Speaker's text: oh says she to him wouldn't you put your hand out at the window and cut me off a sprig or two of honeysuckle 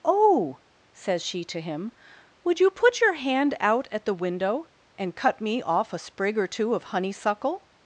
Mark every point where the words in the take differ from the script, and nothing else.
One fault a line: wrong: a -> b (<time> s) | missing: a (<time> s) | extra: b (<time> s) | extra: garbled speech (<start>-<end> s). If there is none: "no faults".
wrong: wouldn't -> would (2.4 s)